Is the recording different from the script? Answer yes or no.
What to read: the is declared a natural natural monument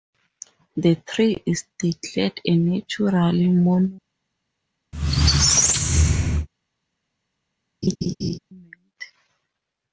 yes